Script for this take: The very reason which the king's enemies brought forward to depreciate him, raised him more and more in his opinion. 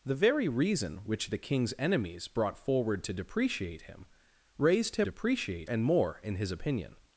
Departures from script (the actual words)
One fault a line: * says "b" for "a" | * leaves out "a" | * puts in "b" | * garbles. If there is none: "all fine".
* says "depreciate" for "more"